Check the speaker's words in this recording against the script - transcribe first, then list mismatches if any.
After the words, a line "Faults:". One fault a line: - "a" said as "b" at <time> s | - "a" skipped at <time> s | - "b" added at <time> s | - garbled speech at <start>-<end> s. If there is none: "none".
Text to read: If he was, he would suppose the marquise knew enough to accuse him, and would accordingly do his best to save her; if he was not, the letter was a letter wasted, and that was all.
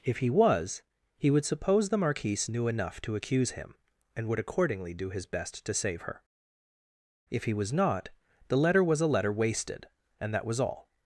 If he was, he would suppose the marquise knew enough to accuse him, and would accordingly do his best to save her; if he was not, the letter was a letter wasted, and that was all.
Faults:
none